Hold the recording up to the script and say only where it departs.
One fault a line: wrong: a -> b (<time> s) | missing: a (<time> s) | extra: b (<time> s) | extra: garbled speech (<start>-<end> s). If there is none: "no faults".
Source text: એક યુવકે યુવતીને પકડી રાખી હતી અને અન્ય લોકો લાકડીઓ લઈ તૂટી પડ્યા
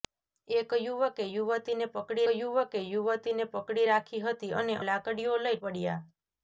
extra: યુવકે યુવતીને પકડી (2.3 s)
missing: અન્ય લોકો (4.8 s)
missing: તૂટી (5.6 s)